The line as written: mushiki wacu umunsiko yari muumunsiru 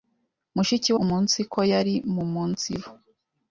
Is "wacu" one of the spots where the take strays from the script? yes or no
yes